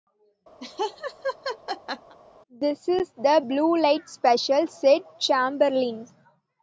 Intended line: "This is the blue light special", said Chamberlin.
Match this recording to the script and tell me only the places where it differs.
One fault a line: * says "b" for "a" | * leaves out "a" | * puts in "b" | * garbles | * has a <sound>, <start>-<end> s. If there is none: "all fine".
* has a laugh, 0.6-2.2 s